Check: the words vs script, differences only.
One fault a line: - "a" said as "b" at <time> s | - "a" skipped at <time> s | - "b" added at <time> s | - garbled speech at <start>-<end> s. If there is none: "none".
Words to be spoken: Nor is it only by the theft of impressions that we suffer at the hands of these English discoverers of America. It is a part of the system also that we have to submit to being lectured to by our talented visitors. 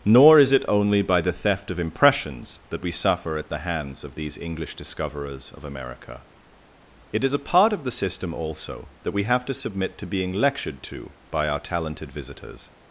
none